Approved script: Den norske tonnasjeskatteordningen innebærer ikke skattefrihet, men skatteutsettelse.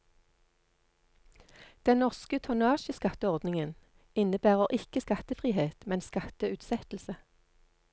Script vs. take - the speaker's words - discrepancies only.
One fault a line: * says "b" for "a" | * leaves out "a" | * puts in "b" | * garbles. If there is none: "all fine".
all fine